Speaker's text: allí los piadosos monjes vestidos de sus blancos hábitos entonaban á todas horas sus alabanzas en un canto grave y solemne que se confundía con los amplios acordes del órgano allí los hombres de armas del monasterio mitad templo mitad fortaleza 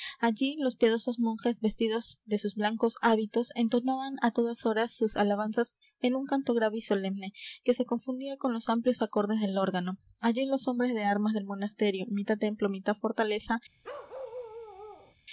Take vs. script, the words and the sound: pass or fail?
fail